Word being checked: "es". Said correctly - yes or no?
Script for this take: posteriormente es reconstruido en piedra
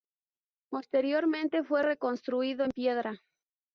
no